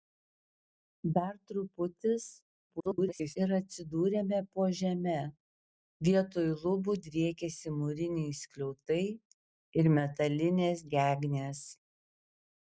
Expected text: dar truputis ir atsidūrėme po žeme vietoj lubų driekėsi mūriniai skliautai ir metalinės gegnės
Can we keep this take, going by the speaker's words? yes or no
no